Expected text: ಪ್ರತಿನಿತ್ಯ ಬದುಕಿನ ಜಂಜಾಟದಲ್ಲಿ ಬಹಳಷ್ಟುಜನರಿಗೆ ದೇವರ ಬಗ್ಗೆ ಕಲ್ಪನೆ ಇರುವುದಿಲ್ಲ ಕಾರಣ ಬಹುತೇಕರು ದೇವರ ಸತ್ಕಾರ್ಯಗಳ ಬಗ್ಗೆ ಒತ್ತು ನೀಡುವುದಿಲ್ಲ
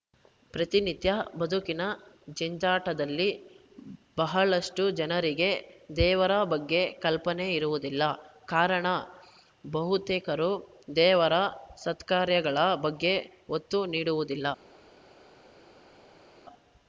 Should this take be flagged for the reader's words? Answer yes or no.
no